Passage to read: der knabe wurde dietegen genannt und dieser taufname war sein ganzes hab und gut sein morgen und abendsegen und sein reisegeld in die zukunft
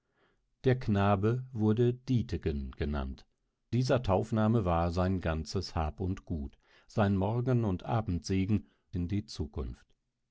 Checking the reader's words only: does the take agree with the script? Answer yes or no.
no